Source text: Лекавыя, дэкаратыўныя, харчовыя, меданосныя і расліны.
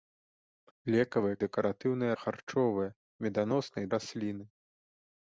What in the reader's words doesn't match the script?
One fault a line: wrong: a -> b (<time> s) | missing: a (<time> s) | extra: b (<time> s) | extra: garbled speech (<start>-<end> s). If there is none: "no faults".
no faults